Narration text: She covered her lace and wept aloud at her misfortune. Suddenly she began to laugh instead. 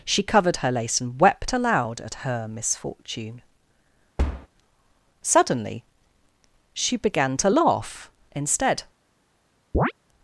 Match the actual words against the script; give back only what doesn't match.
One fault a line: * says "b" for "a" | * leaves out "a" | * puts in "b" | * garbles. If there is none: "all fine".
all fine